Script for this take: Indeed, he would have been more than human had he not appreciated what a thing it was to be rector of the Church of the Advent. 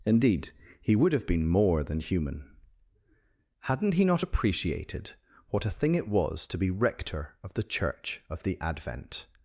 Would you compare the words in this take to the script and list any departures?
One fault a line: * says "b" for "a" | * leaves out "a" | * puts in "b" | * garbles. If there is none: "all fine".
* says "hadn't" for "had"